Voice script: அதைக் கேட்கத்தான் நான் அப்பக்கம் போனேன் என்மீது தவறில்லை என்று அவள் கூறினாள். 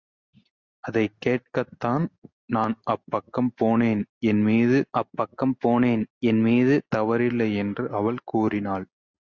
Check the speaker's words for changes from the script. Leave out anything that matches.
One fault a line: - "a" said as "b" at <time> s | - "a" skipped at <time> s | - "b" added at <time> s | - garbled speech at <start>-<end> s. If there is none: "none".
- "அப்பக்கம் போனேன் என்மீது" added at 5.0 s